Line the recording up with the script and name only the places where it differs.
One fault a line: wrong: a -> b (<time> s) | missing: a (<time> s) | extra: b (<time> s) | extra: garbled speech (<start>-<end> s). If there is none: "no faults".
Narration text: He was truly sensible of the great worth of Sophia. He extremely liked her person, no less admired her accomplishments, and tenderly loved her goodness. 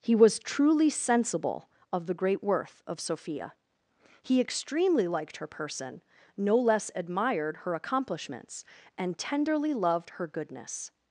no faults